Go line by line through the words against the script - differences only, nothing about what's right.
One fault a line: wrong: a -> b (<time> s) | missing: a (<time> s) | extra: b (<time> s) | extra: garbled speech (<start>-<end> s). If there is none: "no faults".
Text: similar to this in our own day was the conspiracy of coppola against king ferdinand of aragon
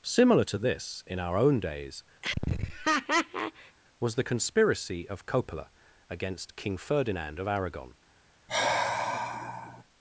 wrong: day -> days (1.6 s)